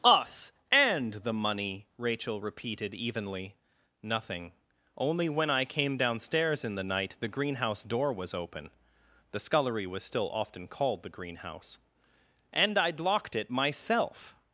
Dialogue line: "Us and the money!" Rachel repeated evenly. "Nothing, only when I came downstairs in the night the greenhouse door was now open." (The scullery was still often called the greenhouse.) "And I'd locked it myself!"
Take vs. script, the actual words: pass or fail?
fail